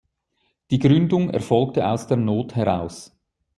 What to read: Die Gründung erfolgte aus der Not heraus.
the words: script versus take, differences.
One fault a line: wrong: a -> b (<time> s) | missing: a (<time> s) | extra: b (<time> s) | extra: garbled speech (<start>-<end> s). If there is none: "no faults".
no faults